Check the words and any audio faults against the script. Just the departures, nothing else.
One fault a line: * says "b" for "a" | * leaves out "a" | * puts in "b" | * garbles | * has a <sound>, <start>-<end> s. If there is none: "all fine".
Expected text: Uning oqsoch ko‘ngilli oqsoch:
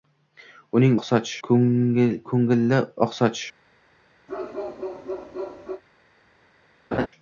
* has a bark, 4.3-5.8 s
* has a laugh, 6.9-7.1 s